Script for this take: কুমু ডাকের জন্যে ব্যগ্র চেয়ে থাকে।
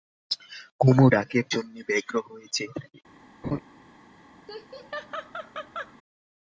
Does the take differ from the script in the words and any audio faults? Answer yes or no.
yes